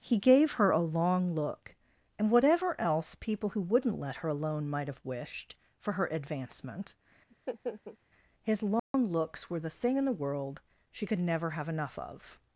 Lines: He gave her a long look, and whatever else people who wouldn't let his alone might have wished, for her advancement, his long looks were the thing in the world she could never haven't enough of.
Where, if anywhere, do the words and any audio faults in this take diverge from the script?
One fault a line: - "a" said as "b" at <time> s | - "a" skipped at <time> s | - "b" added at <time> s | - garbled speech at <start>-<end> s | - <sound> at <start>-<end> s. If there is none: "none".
- "his" said as "her" at 4.2 s
- laugh at 7.3-8.0 s
- dropout at 8.8-8.9 s
- "haven't" said as "have" at 11.5 s